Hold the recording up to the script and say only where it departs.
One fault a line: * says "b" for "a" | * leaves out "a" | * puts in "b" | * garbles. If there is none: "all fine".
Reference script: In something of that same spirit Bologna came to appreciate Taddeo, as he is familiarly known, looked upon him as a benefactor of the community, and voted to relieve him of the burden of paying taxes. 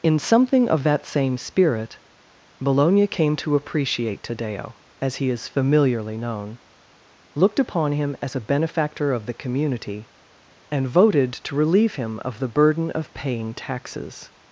all fine